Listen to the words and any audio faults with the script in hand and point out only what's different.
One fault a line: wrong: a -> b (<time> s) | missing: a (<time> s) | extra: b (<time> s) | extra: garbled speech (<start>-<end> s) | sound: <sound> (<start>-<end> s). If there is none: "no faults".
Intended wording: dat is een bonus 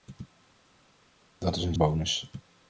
no faults